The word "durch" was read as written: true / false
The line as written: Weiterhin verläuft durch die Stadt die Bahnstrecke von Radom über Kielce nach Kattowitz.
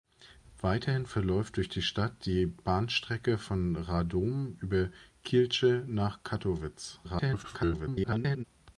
true